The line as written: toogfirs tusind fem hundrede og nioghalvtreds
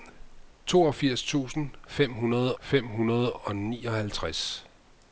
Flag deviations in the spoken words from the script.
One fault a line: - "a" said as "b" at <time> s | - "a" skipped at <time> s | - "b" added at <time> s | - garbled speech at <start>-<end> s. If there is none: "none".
- "fem hundrede" added at 2.6 s